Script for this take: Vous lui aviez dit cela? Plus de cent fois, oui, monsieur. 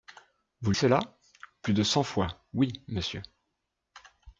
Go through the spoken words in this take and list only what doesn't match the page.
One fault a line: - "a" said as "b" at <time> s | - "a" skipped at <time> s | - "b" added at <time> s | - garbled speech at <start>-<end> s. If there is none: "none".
- "lui aviez dit" skipped at 0.7 s